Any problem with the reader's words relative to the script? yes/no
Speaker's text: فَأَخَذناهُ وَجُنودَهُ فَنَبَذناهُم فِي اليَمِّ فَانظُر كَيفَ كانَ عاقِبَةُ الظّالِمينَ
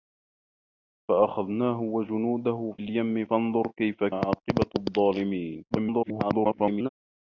yes